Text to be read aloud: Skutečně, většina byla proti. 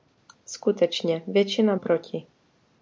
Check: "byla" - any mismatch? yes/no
yes